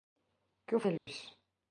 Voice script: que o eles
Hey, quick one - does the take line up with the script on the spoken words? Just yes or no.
yes